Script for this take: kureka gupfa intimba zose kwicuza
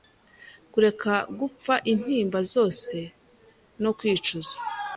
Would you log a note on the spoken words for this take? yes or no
yes